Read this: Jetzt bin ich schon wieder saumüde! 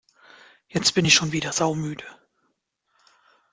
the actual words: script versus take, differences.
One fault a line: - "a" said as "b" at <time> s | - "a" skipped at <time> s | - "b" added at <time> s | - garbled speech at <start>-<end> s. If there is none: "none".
none